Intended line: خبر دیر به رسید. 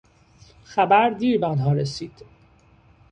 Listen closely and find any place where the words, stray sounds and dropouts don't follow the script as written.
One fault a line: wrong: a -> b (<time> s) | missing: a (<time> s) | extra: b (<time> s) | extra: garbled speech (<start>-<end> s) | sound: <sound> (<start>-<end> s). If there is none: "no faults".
extra: آنها (1.4 s)